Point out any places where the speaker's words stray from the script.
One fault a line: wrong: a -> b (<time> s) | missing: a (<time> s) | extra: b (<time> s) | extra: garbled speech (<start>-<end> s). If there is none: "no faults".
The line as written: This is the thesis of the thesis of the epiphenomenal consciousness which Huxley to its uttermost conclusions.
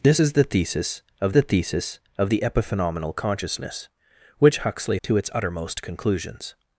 no faults